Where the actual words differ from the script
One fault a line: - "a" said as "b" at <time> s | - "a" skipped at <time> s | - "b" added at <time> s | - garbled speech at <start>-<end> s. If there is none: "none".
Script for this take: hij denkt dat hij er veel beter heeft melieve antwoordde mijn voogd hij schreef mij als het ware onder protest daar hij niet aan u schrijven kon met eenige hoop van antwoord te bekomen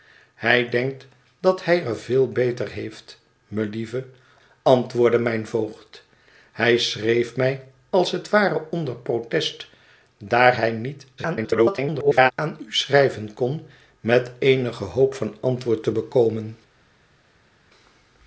- garbled speech at 11.2-12.3 s